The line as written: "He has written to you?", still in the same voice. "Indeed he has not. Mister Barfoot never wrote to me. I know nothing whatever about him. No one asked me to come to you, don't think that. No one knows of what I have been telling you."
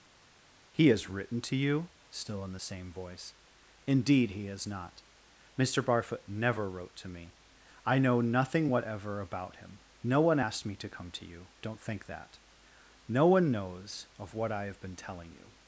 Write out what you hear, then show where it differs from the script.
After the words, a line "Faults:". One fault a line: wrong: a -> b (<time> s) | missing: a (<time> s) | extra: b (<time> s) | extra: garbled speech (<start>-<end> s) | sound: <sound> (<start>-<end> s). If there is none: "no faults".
"He has written to you?", still in the same voice. "Indeed he has not. Mister Barfoot never wrote to me. I know nothing whatever about him. No one asked me to come to you, don't think that. No one knows of what I have been telling you."
Faults:
no faults